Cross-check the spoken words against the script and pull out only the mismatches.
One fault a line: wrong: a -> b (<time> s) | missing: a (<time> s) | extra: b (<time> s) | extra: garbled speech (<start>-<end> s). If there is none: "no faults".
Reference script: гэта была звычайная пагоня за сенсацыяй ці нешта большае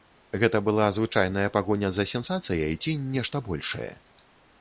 no faults